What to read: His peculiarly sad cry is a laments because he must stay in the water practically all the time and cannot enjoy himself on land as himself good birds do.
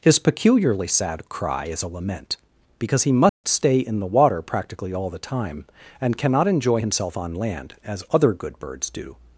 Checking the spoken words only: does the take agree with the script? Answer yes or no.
no